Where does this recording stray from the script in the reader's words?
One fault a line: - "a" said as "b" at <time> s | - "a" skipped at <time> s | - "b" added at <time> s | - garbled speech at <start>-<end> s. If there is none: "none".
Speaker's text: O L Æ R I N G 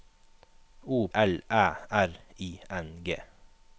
none